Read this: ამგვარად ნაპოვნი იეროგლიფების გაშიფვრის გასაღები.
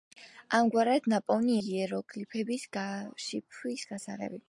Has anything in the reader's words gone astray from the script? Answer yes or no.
no